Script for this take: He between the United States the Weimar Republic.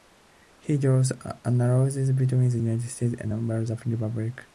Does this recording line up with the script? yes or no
no